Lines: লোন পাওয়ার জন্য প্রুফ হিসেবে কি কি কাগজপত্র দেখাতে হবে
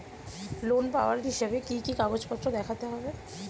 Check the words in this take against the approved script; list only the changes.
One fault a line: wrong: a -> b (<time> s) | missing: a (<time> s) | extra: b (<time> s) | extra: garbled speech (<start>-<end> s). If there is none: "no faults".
missing: জন্য প্রুফ (1.2 s)